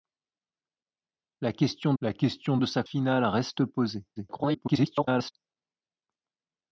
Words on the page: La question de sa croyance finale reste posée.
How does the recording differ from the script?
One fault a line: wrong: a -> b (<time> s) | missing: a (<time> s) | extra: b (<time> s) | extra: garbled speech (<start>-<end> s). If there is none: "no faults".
extra: la question (2.0 s)
missing: croyance (2.8 s)
extra: garbled speech (4.2-5.3 s)